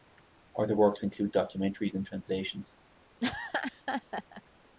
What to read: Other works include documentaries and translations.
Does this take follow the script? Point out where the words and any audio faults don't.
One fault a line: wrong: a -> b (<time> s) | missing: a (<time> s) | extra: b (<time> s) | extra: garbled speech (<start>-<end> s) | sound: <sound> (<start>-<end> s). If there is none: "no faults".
sound: laugh (3.2-4.4 s)